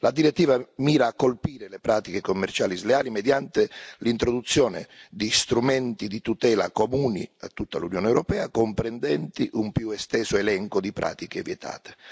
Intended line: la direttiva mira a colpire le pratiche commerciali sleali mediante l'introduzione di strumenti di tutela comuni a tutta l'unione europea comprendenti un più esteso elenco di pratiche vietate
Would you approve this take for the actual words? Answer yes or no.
yes